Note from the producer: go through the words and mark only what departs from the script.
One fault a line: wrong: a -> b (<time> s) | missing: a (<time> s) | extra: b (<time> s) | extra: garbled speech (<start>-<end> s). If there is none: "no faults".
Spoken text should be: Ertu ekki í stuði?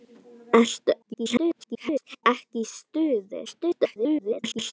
extra: garbled speech (1.0-2.2 s)
extra: garbled speech (3.5-4.7 s)